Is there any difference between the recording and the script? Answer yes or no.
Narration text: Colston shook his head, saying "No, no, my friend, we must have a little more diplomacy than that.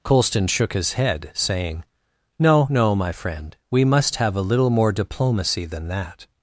no